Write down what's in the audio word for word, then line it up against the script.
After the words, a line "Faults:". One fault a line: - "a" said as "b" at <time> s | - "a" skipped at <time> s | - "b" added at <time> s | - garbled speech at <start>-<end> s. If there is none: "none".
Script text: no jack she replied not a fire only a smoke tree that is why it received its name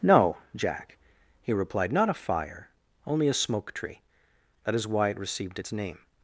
no jack he replied not a fire only a smoke tree that is why it received its name
Faults:
- "she" said as "he" at 1.4 s